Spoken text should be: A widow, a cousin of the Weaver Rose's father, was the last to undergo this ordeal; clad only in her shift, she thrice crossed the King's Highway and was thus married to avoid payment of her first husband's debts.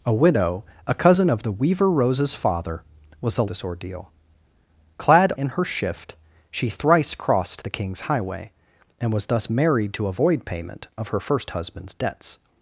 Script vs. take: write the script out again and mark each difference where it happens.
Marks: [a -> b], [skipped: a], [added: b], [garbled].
A widow, a cousin of the Weaver Rose's father, was the [skipped: last to undergo] this ordeal; clad [skipped: only] in her shift, she thrice crossed the King's Highway and was thus married to avoid payment of her first husband's debts.